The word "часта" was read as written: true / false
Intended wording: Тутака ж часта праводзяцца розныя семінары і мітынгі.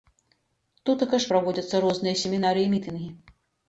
false